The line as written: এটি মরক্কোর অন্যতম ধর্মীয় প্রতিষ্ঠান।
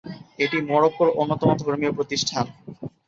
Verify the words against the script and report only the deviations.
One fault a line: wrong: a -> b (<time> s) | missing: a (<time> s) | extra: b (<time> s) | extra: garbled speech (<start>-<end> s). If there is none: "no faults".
no faults